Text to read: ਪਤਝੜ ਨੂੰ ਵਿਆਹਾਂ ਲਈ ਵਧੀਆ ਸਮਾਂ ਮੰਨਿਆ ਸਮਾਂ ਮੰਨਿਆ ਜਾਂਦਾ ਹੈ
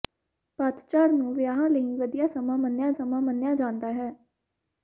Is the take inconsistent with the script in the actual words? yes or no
no